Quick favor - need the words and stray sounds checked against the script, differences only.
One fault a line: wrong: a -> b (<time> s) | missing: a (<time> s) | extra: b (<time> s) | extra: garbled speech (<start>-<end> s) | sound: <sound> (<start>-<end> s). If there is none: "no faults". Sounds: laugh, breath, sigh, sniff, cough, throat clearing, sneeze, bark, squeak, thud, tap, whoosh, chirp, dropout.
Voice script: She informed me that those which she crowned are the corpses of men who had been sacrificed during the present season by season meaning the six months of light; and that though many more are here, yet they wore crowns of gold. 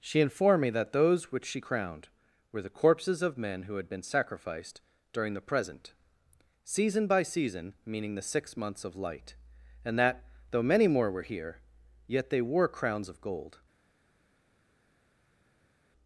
wrong: are -> were (2.5 s)
wrong: are -> were (11.1 s)